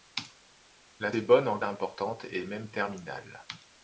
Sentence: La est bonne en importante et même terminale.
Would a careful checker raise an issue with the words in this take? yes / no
no